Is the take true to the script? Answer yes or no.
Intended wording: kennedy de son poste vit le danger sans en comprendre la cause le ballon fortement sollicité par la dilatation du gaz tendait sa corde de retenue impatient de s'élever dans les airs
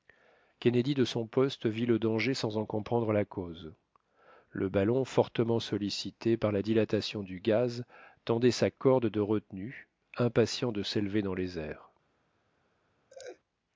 yes